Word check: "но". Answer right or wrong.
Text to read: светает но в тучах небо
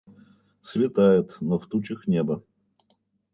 right